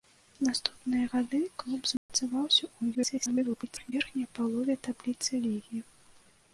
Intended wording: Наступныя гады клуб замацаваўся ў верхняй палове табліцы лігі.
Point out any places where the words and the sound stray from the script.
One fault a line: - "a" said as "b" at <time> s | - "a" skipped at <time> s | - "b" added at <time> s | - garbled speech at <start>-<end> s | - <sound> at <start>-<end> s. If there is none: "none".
- dropout at 2.0-2.1 s
- garbled speech at 2.9-3.9 s